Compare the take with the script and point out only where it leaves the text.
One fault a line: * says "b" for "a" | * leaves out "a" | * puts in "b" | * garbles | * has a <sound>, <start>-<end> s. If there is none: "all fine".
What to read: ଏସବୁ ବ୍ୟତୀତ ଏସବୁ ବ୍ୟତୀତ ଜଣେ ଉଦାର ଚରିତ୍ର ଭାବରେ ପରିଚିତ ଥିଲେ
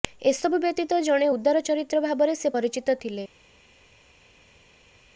* leaves out "ଏସବୁ ବ୍ୟତୀତ"
* puts in "ସେ"